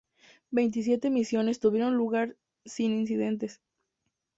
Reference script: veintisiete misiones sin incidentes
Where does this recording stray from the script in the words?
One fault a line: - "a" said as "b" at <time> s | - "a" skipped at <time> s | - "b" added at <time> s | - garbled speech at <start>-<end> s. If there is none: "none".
- "tuvieron lugar" added at 1.6 s